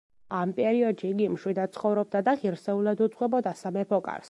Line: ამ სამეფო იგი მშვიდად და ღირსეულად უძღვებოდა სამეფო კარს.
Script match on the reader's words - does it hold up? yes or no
no